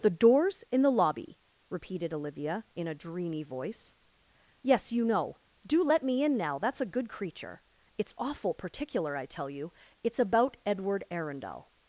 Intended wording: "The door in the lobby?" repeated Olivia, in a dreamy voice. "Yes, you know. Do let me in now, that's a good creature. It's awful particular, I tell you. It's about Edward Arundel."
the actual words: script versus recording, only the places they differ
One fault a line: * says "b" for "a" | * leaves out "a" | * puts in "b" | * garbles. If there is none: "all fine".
* says "doors" for "door"